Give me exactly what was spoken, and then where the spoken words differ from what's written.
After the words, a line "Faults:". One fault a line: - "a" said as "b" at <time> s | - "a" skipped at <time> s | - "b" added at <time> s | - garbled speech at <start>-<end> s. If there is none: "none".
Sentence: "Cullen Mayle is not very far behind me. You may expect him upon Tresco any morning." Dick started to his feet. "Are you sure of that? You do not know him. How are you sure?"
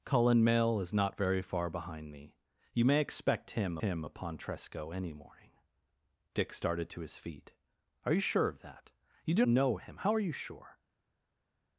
"Cullen Mayle is not very far behind me. You may expect him him upon Tresco any morning." Dick started to his feet. "Are you sure of that? You do know him. How are you sure?"
Faults:
- "him" added at 3.8 s
- "not" skipped at 9.4 s